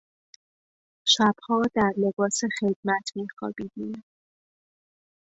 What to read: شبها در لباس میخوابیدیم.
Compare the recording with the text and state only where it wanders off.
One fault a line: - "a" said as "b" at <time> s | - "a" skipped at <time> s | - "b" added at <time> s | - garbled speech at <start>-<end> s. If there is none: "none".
- "خدمت" added at 2.6 s